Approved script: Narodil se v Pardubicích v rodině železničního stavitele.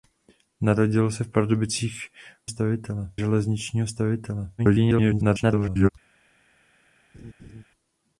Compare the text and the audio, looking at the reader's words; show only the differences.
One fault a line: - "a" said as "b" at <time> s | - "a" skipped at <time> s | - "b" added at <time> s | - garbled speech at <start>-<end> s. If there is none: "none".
- "rodině" said as "stavitele" at 2.5 s
- garbled speech at 4.6-5.9 s